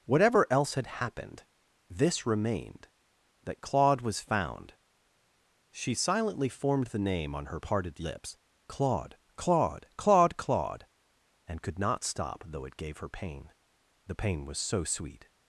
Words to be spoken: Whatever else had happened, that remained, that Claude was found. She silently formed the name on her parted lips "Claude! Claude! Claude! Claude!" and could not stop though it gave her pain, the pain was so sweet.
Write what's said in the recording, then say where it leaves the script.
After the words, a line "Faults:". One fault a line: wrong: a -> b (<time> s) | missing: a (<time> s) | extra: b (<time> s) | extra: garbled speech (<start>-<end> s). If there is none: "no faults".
Whatever else had happened, this remained, that Claude was found. She silently formed the name on her parted lips "Claude! Claude! Claude! Claude!" and could not stop though it gave her pain, the pain was so sweet.
Faults:
wrong: that -> this (1.9 s)